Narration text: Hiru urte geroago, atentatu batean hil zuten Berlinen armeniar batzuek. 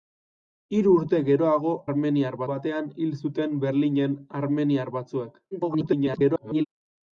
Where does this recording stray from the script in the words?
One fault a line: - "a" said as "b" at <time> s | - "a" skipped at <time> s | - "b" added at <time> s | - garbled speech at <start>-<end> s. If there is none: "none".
- "atentatu" said as "armeniar" at 1.9 s
- garbled speech at 5.5-6.7 s